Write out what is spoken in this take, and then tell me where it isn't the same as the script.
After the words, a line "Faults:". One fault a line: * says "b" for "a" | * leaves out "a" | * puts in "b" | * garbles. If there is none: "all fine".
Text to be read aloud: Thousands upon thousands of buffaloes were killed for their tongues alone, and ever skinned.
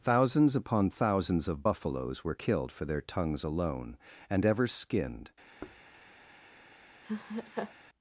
Thousands upon thousands of buffaloes were killed for their tongues alone, and ever skinned.
Faults:
all fine